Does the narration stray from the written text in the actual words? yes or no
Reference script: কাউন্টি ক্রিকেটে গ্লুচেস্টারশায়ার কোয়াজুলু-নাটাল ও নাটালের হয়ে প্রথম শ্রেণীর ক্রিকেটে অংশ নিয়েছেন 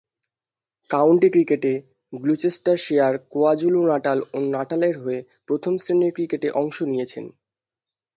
no